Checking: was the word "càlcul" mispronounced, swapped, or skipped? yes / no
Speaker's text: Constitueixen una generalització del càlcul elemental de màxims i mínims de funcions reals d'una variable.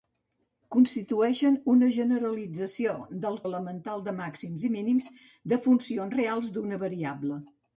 yes